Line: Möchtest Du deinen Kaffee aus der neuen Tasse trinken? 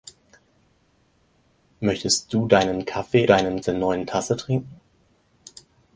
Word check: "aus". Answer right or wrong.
wrong